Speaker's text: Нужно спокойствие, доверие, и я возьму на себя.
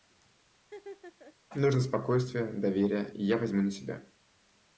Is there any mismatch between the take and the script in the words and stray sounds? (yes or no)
yes